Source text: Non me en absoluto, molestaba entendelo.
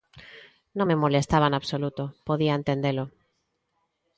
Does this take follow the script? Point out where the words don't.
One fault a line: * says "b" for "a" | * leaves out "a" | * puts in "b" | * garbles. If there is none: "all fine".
* puts in "molestaba"
* says "podía" for "molestaba"